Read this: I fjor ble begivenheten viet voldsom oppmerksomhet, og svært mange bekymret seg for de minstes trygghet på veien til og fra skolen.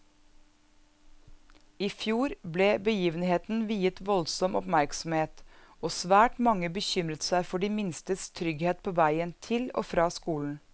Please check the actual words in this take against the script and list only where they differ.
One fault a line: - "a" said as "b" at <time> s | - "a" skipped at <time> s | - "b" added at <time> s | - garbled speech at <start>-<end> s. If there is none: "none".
none